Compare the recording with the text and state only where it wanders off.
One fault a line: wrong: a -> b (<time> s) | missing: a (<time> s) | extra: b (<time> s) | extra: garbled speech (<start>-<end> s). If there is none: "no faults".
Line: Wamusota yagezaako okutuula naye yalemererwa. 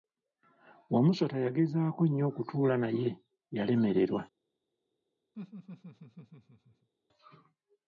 extra: nnyo (2.1 s)